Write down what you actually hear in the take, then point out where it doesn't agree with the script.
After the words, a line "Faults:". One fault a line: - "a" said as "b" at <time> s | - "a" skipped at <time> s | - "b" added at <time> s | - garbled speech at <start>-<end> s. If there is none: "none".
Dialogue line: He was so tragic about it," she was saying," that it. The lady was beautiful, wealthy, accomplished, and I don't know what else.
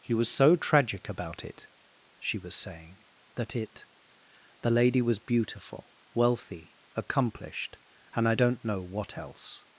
He was so tragic about it," she was saying," that it. The lady was beautiful, wealthy, accomplished, and I don't know what else.
Faults:
none